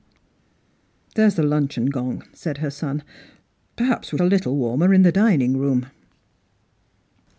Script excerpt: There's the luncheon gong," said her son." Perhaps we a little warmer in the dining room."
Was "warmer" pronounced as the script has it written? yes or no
yes